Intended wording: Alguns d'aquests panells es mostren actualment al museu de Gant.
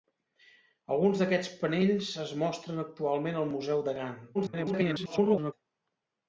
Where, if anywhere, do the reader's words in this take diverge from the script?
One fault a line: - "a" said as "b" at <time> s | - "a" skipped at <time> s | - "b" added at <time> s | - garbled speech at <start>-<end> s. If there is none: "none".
- garbled speech at 4.3-5.5 s